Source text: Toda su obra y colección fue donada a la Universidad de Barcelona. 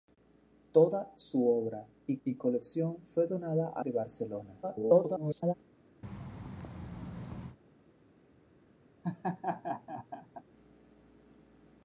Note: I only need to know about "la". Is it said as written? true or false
false